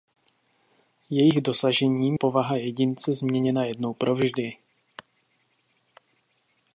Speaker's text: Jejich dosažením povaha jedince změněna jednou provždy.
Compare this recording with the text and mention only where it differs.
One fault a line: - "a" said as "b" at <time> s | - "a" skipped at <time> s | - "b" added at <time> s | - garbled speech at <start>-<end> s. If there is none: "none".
none